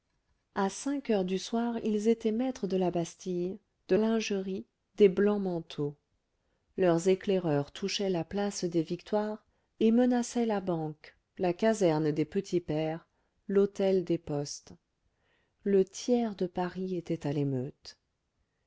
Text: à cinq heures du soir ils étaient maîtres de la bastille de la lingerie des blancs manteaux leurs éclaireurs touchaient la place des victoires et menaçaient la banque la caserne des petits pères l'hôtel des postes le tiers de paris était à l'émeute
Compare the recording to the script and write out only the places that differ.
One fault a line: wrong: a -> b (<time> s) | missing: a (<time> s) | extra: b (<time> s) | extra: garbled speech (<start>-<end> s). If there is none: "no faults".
missing: la (4.0 s)